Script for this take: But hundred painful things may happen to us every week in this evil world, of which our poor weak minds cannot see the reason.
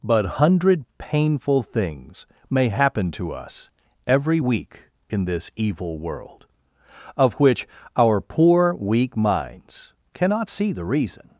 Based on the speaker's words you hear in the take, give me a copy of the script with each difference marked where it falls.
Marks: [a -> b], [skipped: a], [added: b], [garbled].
But hundred painful things may happen to us every week in this evil world, of which our poor weak minds cannot see the reason.